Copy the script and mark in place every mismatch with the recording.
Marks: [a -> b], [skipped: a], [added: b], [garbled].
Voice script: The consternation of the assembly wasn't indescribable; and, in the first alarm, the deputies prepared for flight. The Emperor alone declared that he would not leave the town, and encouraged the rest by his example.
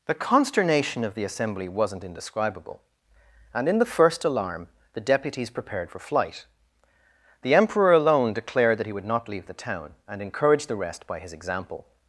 The consternation of the assembly wasn't indescribable; and, in the first alarm, the deputies prepared for flight. The Emperor alone declared that he would not leave the town, and encouraged the rest by his example.